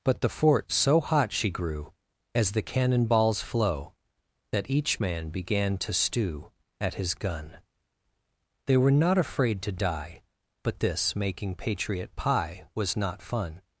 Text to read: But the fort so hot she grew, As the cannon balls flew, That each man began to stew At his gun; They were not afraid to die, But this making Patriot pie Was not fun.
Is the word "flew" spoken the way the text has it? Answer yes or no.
no